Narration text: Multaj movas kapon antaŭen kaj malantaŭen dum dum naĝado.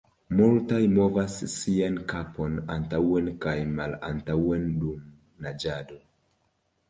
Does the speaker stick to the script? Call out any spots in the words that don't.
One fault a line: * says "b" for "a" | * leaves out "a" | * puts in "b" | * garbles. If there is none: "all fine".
* puts in "sian"
* leaves out "dum"